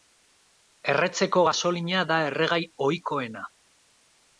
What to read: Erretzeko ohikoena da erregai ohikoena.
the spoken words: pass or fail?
fail